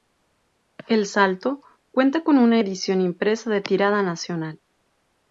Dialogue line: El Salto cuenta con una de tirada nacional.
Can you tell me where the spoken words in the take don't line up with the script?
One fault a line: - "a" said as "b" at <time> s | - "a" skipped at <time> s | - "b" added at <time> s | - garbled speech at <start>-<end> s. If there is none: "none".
- "edición impresa" added at 2.6 s